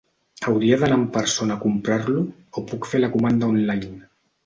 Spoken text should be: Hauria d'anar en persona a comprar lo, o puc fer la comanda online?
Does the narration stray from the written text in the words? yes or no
no